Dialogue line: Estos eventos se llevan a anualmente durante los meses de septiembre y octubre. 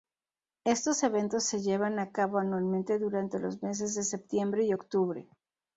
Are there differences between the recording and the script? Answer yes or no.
yes